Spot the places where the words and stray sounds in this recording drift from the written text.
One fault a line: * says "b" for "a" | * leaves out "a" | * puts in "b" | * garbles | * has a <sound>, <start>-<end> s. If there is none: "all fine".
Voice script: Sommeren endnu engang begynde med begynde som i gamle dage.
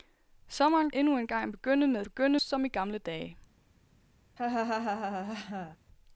* has a laugh, 4.4-5.8 s